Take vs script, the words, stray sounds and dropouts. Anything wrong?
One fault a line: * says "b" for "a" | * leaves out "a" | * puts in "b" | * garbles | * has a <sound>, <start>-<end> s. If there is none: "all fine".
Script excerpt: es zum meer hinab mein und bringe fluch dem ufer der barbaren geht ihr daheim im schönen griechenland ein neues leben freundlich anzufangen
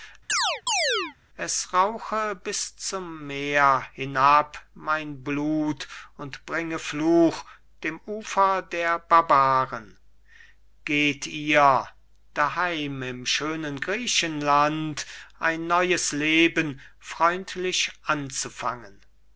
* has a chirp, 0.3-1.2 s
* puts in "rauche bis"
* puts in "blut"